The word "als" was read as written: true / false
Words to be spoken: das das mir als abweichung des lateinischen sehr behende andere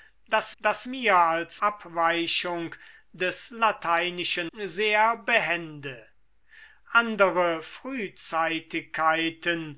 true